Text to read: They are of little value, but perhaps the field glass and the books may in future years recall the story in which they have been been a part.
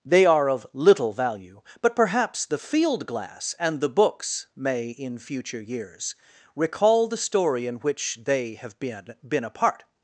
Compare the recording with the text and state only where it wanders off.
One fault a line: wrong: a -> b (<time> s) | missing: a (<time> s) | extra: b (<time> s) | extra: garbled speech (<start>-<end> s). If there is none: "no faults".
no faults